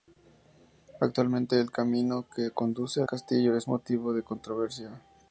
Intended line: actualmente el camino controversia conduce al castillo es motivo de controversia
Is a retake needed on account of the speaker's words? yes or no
yes